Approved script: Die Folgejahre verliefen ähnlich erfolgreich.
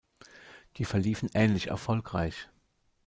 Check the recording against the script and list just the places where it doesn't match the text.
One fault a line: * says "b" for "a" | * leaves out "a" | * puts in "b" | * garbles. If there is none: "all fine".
* leaves out "Folgejahre"